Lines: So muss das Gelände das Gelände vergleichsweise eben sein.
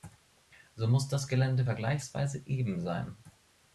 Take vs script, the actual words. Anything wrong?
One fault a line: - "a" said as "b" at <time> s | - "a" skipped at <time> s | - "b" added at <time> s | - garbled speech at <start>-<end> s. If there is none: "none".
- "das Gelände" skipped at 1.6 s